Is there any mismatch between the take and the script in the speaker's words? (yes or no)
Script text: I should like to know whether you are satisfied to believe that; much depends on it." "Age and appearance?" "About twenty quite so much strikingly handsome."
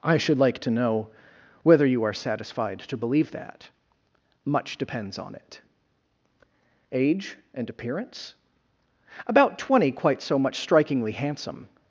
no